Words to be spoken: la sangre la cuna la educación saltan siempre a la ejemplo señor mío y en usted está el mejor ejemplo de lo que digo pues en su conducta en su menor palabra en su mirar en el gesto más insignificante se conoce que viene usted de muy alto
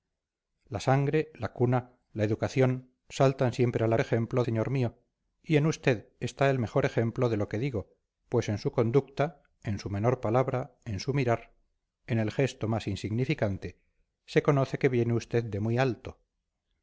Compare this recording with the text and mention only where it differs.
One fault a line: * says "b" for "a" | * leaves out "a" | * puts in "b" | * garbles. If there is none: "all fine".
all fine